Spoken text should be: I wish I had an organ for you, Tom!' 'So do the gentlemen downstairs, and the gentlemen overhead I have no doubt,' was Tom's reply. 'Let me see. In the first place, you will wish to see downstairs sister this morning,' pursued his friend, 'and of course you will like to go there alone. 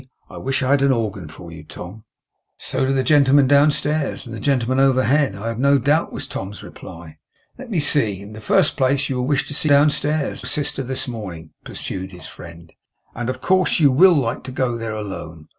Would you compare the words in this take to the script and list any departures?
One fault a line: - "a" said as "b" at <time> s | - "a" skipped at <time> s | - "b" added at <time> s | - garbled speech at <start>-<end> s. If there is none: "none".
none